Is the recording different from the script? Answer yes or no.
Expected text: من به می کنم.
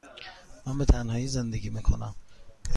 yes